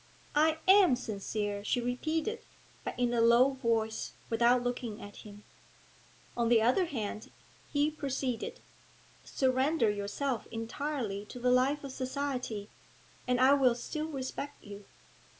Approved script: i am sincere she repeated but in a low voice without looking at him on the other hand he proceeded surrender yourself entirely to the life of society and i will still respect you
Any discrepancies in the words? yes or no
no